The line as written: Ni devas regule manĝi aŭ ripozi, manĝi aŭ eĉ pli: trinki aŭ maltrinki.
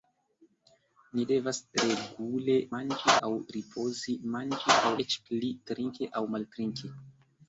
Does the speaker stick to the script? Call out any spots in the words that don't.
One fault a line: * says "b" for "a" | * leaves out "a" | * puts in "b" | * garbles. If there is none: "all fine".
all fine